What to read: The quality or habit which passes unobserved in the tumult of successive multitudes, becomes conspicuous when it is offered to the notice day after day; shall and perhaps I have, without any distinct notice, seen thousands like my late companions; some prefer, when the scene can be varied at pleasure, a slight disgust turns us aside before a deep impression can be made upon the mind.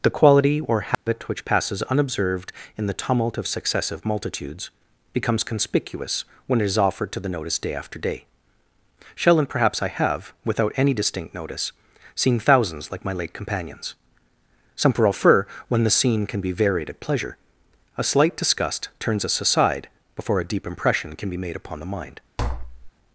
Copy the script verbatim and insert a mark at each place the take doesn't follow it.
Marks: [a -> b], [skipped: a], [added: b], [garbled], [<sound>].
The quality or habit [dropout] which passes unobserved in the tumult of successive multitudes, becomes conspicuous when it is offered to the notice day after day; shall and perhaps I have, without any distinct notice, seen thousands like my late companions; some prefer, when the scene can be varied at pleasure, a slight disgust turns us aside before a deep impression can be made upon the mind. [tap]